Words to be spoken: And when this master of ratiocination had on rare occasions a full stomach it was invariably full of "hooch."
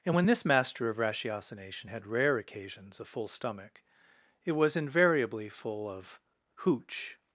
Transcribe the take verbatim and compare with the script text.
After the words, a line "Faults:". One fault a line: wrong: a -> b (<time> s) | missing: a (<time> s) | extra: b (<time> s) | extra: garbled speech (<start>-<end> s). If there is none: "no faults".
And when this master of ratiocination had rare occasions a full stomach it was invariably full of "hooch."
Faults:
missing: on (2.1 s)